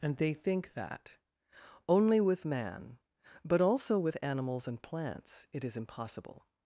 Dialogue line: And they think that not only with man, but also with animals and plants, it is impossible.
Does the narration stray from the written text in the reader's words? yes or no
yes